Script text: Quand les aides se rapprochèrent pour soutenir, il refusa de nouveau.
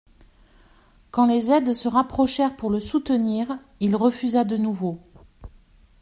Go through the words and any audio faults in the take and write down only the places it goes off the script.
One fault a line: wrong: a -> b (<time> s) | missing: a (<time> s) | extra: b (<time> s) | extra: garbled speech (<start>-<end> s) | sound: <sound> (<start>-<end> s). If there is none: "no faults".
extra: le (2.7 s)